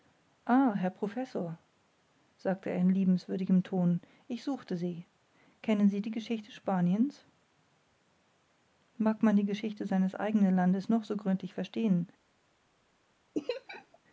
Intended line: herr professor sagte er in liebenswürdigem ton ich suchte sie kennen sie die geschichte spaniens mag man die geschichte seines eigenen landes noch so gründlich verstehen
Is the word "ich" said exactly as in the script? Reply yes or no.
yes